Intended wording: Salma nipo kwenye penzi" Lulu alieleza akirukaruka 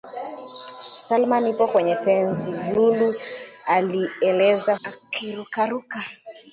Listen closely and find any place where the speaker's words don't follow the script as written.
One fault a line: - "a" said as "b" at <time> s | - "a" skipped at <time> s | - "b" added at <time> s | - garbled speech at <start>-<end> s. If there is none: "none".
none